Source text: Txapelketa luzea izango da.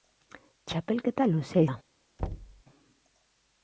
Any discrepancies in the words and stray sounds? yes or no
yes